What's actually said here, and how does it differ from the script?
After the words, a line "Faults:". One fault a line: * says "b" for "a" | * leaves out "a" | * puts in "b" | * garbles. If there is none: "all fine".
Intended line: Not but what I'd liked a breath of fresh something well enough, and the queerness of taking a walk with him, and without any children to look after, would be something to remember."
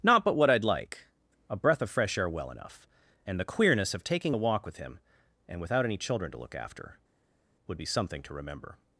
Not but what I'd like a breath of fresh air well enough, and the queerness of taking a walk with him, and without any children to look after, would be something to remember."
Faults:
* says "like" for "liked"
* says "air" for "something"